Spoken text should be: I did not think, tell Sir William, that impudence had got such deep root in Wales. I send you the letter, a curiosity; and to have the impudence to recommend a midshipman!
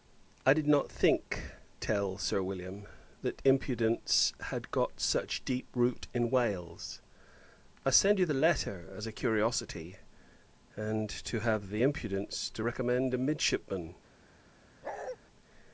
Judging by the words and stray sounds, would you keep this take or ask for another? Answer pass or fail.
fail